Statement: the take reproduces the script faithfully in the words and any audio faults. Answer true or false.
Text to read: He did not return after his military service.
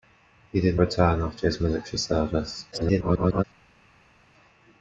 false